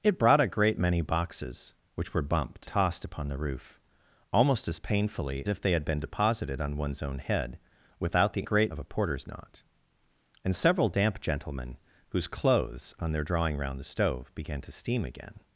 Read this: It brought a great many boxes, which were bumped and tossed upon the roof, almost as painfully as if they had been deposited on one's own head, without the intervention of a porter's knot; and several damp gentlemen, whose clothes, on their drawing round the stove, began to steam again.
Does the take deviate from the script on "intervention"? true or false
true